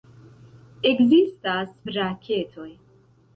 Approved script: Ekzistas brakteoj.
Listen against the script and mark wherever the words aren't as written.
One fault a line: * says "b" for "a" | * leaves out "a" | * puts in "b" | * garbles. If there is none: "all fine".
all fine